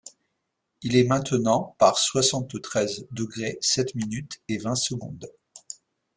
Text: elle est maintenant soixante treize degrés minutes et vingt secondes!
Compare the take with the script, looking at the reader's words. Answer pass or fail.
fail